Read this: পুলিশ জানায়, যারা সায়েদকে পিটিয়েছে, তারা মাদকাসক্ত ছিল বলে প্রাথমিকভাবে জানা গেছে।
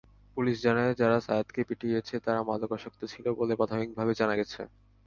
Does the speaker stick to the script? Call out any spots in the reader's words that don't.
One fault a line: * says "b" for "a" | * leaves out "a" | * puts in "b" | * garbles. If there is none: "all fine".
all fine